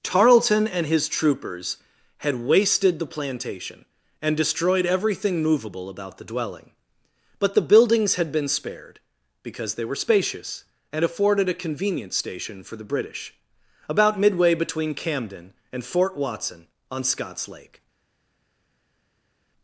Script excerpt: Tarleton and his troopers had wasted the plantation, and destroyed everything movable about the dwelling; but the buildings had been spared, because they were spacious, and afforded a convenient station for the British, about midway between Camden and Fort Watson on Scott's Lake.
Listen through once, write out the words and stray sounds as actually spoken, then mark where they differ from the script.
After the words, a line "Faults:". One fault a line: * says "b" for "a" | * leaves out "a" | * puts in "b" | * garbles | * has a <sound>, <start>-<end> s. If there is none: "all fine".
Tarleton and his troopers had wasted the plantation, and destroyed everything movable about the dwelling; but the buildings had been spared, because they were spacious, and afforded a convenient station for the British, about midway between Camden and Fort Watson on Scott's Lake.
Faults:
all fine